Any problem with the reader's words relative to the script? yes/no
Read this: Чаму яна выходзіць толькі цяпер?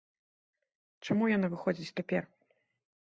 yes